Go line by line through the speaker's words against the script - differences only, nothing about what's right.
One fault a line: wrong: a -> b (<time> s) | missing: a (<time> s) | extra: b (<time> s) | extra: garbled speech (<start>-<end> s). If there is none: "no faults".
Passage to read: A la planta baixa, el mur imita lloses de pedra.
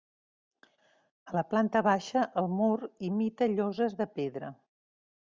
no faults